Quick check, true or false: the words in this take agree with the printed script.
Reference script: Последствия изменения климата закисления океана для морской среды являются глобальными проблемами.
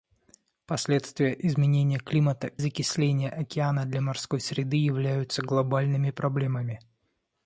true